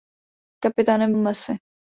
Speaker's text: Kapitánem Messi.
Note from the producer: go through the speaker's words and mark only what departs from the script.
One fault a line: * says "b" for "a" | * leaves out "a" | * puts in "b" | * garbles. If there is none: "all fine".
all fine